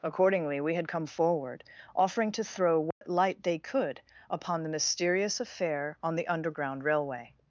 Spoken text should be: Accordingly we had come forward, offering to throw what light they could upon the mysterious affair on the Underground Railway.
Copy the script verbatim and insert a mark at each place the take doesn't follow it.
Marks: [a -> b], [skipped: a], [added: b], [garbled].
Accordingly we had come forward, offering to throw what light they could upon the mysterious affair on the Underground Railway.